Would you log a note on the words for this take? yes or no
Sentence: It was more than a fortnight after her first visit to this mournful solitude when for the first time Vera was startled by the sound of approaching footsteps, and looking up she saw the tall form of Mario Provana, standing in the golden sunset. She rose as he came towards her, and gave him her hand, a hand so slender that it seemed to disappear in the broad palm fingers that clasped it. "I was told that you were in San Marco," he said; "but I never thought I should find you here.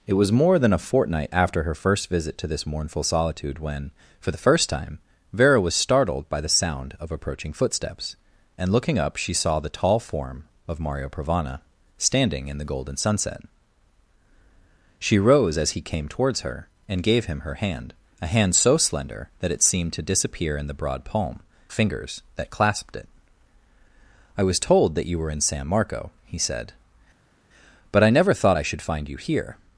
no